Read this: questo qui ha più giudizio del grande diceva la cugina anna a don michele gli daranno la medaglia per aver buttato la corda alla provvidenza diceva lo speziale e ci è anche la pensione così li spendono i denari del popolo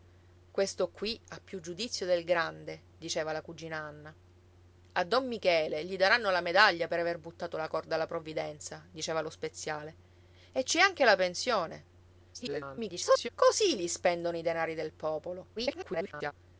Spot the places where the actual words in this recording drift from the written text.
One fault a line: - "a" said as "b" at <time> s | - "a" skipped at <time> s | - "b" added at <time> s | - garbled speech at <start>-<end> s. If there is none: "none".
- garbled speech at 12.3-13.3 s
- garbled speech at 15.6-16.3 s